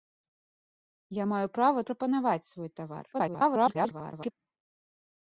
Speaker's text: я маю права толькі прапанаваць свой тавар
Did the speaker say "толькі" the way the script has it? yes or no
no